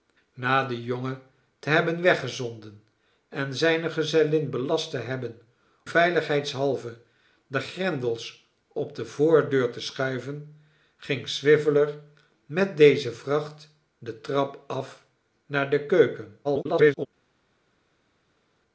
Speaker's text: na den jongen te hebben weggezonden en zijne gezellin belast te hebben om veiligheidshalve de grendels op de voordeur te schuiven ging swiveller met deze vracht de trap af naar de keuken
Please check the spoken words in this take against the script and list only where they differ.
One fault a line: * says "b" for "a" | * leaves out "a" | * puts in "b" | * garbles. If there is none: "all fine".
* leaves out "om"
* garbles